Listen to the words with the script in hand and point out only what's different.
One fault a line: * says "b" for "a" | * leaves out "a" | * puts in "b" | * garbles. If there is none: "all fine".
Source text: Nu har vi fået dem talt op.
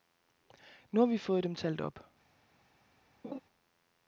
all fine